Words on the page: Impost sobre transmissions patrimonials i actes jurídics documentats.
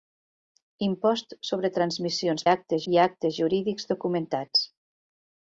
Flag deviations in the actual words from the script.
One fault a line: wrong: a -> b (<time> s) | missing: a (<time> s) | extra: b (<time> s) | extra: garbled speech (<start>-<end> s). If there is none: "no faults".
wrong: patrimonials -> actes (2.5 s)